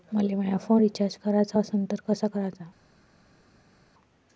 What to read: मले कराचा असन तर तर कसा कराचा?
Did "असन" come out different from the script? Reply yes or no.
no